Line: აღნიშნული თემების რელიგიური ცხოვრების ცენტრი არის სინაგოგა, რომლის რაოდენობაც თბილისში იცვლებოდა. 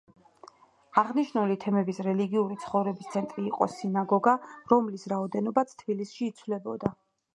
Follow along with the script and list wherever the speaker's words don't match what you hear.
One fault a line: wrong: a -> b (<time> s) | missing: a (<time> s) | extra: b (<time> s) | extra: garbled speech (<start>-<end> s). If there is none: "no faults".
wrong: არის -> იყო (3.5 s)